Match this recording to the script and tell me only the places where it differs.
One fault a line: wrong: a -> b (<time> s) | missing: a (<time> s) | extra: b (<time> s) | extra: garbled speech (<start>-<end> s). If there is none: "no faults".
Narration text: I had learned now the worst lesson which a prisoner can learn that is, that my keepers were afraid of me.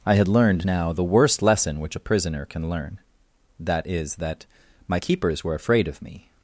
no faults